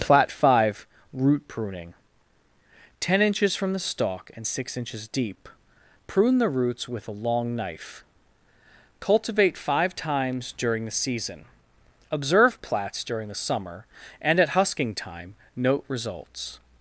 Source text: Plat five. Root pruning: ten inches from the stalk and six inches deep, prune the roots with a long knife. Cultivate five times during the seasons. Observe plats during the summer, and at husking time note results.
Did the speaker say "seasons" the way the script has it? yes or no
no